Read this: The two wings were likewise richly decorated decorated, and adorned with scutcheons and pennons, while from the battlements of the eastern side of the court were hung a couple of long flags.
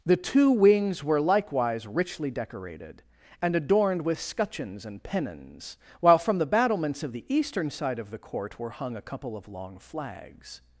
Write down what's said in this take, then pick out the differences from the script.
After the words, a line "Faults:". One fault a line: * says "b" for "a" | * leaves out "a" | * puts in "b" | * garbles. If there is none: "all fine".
The two wings were likewise richly decorated, and adorned with scutcheons and pennons, while from the battlements of the eastern side of the court were hung a couple of long flags.
Faults:
* leaves out "decorated"